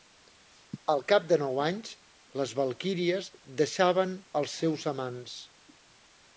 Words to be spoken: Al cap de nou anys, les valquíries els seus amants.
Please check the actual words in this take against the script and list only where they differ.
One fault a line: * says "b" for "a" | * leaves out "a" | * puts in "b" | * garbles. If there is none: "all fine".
* puts in "deixaven"